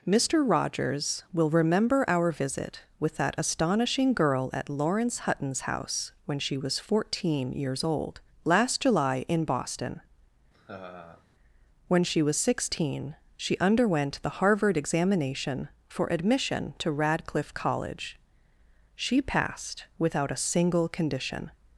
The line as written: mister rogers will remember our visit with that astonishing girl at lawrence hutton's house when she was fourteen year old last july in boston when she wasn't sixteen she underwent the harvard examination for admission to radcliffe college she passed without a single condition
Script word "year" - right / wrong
wrong